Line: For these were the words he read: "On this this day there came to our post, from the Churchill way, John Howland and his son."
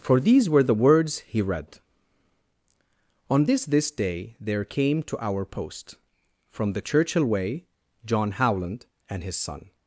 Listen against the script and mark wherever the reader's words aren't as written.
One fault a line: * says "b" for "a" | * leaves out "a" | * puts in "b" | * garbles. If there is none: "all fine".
all fine